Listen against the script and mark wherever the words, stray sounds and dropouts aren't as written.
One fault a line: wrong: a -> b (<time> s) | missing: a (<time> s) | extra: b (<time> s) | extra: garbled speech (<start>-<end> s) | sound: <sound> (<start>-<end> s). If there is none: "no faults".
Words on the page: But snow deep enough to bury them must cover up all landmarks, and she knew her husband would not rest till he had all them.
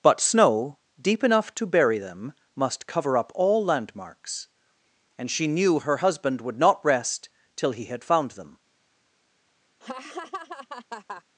wrong: all -> found (8.0 s)
sound: laugh (9.8-11.2 s)